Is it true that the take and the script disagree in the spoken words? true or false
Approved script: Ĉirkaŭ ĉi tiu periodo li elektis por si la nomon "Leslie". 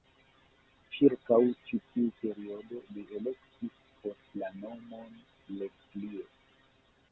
true